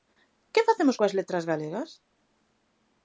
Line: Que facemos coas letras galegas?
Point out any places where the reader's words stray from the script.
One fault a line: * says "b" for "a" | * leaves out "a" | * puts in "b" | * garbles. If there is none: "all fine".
all fine